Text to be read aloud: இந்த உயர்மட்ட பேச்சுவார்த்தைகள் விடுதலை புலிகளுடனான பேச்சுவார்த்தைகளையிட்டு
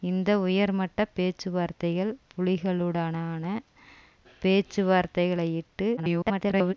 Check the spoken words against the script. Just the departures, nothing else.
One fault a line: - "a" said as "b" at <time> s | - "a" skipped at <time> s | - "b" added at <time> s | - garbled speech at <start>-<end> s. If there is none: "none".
- "விடுதலை" skipped at 2.1 s
- garbled speech at 6.0-6.7 s